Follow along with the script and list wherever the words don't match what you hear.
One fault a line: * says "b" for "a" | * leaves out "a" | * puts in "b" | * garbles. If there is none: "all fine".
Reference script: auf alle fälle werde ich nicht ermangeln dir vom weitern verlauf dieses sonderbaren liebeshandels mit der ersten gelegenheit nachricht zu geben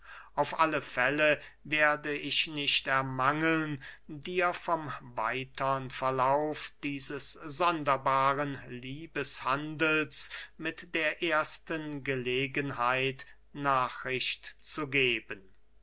all fine